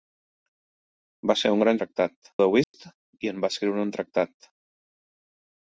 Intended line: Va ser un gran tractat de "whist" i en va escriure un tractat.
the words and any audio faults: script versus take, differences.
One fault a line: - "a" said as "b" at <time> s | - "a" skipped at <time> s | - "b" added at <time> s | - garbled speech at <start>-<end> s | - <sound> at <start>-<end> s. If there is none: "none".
- dropout at 2.6-2.7 s